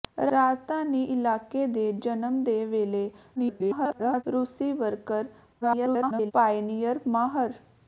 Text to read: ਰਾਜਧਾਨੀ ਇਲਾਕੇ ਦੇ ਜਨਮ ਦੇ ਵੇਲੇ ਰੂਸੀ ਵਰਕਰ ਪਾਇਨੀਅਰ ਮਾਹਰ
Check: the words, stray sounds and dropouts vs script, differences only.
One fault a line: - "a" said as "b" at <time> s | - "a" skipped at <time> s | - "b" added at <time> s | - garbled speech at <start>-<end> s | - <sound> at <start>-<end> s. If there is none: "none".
- garbled speech at 3.4-4.2 s
- garbled speech at 5.6-6.3 s